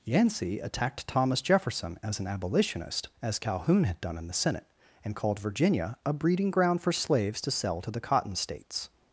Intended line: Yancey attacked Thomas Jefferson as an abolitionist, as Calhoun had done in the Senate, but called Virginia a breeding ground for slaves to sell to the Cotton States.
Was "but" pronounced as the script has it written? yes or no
no